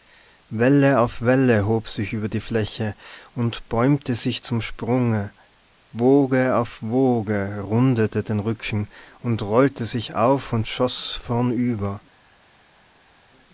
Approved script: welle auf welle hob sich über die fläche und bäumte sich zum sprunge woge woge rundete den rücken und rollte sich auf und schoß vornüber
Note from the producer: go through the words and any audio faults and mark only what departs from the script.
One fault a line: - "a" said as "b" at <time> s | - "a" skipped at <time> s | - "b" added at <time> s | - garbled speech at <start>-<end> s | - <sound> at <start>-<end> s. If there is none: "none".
- "auf" added at 6.5 s